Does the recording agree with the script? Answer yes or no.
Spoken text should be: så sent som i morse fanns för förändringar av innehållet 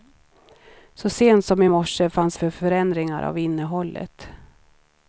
yes